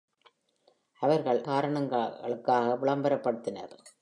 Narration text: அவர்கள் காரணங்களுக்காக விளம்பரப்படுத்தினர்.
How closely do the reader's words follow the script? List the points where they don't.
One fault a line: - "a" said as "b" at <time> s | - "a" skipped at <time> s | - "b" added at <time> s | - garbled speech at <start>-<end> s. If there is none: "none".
none